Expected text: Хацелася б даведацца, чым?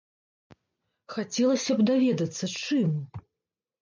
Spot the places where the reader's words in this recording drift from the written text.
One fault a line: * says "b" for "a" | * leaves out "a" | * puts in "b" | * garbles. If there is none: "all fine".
all fine